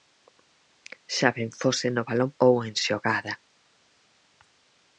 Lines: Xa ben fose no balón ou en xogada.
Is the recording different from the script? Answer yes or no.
no